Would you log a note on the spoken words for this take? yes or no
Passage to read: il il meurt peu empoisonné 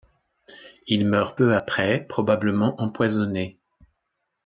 yes